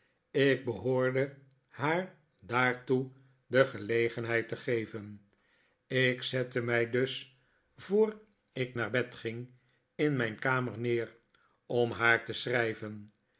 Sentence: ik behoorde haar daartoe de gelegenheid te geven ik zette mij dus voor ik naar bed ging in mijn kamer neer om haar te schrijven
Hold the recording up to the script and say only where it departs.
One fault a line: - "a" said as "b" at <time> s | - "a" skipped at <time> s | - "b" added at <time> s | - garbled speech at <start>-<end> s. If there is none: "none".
none